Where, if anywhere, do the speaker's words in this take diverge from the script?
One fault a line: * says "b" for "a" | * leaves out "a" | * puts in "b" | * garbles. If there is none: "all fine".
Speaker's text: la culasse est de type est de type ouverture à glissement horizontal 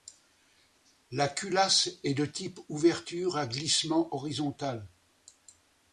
* leaves out "est de type"